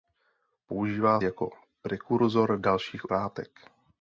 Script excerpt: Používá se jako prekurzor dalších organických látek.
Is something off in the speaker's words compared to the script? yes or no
yes